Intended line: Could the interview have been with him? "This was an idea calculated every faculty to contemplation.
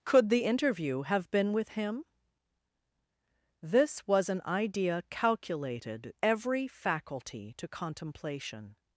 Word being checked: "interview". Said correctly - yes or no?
yes